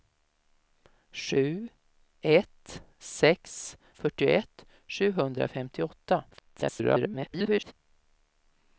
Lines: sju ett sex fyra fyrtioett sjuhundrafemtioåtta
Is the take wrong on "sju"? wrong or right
right